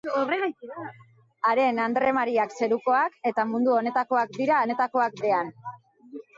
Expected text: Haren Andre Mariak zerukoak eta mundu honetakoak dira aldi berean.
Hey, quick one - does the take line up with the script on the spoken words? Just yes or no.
no